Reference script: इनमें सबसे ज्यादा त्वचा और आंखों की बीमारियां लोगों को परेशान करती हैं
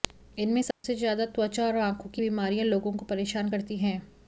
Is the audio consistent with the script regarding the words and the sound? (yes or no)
no